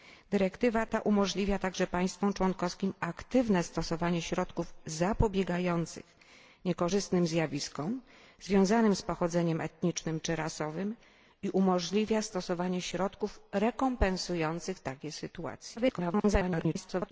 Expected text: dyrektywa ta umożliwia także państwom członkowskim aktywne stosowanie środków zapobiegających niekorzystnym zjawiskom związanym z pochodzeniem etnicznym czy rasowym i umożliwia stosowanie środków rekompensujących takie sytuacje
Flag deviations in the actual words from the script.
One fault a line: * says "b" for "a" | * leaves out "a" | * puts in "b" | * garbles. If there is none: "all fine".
* garbles